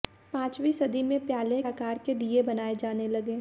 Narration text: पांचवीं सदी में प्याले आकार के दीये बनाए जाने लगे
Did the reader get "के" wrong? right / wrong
right